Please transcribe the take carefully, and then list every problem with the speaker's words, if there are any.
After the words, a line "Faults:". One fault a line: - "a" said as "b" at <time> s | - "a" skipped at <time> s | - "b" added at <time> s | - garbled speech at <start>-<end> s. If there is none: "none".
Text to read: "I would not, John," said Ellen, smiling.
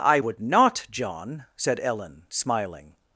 "I would not, John," said Ellen, smiling.
Faults:
none